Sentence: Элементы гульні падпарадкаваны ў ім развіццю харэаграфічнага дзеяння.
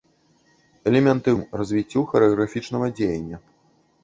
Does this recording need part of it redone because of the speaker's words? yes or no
yes